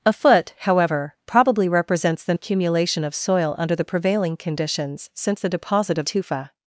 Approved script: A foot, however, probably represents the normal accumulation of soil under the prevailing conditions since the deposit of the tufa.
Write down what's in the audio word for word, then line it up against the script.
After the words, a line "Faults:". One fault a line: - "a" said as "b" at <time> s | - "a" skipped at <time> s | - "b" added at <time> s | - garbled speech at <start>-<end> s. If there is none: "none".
A foot, however, probably represents the accumulation of soil under the prevailing conditions since the deposit of tufa.
Faults:
- "normal" skipped at 2.3 s
- "the" skipped at 6.1 s